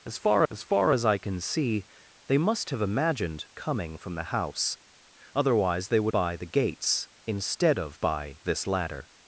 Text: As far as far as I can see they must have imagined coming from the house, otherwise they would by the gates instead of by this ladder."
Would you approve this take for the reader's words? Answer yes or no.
yes